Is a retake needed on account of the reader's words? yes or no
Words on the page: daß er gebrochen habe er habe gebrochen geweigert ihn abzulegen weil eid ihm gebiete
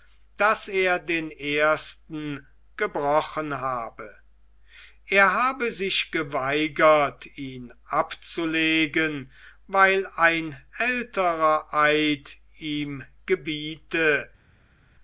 yes